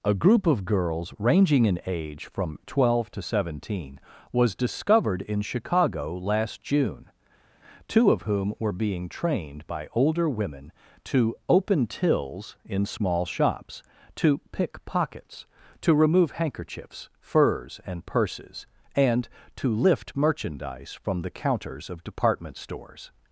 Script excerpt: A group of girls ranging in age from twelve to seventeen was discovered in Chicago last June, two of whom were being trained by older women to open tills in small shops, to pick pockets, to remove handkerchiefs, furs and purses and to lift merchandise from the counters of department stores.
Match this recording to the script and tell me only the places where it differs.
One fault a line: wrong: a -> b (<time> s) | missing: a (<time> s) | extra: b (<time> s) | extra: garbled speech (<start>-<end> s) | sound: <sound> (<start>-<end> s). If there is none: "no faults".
no faults